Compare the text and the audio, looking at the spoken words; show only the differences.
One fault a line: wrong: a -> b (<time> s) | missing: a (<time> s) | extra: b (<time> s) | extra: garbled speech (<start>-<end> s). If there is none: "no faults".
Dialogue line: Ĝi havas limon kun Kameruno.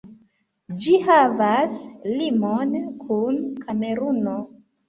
no faults